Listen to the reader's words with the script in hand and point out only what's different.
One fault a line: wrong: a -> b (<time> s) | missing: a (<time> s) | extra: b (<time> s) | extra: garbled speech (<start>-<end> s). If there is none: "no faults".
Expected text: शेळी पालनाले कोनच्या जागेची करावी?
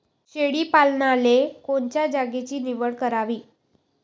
extra: निवड (2.6 s)